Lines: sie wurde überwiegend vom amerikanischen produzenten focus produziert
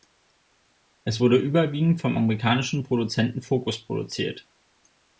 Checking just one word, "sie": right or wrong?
wrong